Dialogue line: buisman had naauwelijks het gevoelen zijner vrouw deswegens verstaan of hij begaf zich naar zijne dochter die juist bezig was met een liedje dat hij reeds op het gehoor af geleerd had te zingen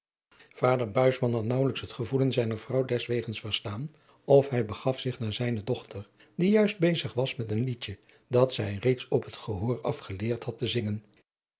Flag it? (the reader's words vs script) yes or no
yes